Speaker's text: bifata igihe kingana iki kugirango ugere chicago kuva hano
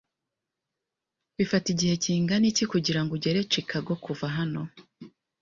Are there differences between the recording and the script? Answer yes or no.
no